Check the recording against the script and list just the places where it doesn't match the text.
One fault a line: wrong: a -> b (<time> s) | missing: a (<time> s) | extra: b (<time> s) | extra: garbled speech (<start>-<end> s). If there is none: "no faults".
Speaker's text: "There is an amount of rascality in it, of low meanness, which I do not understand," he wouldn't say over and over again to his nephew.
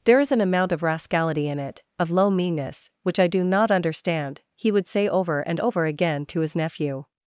wrong: wouldn't -> would (4.7 s)